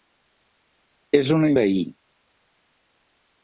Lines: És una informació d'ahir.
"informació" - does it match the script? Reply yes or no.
no